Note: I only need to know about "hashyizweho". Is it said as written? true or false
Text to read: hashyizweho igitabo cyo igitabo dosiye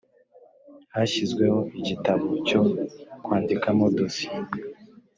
true